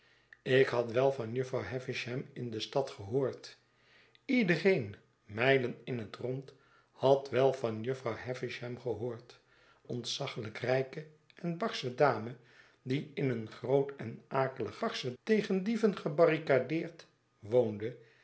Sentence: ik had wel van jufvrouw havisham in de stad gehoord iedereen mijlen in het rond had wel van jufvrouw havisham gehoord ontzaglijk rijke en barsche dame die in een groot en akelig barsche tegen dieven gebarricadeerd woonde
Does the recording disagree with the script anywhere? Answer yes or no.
no